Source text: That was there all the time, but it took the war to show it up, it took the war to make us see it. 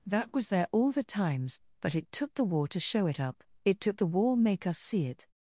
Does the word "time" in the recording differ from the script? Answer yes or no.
yes